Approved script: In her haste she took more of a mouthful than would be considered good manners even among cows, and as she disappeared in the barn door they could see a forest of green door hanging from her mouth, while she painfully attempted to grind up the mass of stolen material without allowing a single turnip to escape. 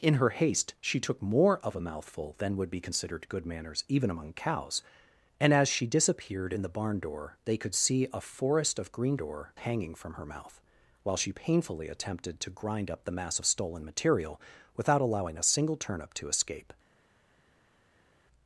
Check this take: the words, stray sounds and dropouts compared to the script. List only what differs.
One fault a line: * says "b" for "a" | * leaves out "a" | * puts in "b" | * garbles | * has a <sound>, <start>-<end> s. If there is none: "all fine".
all fine